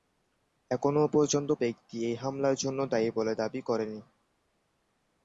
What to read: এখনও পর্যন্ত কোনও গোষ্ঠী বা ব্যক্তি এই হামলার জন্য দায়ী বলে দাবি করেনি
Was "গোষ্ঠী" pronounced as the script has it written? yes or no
no